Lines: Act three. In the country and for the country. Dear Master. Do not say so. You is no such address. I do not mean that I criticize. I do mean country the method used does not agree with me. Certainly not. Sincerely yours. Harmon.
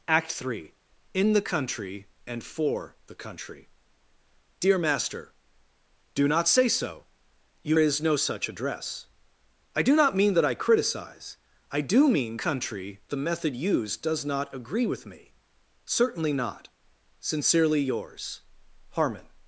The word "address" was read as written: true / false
true